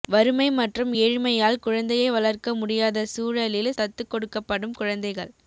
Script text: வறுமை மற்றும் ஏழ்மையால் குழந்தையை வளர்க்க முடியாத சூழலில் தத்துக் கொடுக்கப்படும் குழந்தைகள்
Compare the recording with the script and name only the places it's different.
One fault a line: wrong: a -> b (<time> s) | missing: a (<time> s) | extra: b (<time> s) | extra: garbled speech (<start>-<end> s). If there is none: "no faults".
no faults